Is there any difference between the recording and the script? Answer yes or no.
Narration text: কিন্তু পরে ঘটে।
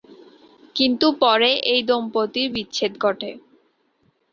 yes